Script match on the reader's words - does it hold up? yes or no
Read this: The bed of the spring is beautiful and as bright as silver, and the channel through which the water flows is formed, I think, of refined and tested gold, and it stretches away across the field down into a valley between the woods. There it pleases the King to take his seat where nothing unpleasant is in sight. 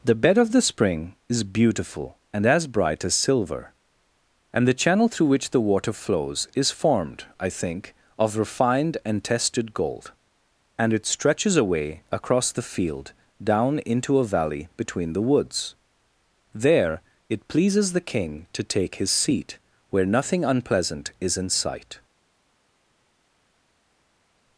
yes